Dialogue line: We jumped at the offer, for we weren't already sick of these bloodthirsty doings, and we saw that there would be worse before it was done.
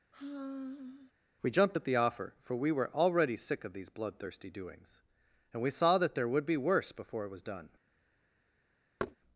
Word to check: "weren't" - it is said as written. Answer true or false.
false